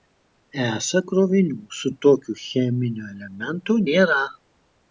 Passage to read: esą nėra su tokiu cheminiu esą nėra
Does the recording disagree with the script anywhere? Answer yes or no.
yes